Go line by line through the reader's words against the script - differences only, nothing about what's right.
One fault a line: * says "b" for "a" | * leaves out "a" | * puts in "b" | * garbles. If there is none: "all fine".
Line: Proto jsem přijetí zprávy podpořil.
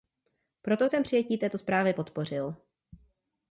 * puts in "této"